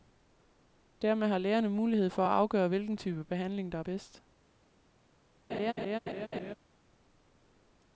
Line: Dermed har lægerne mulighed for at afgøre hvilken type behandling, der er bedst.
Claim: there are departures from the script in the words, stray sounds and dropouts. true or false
true